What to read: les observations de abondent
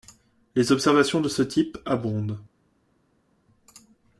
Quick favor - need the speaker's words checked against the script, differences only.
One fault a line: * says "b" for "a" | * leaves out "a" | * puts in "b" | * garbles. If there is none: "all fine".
* puts in "ce type"